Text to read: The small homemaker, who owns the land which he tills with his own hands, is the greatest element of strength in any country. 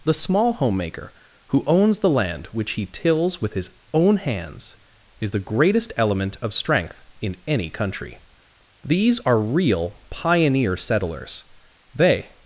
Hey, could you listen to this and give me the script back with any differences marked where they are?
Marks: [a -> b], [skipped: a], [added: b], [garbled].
The small homemaker, who owns the land which he tills with his own hands, is the greatest element of strength in any country. [added: These are real pioneer settlers They]